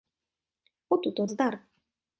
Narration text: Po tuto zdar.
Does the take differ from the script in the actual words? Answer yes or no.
no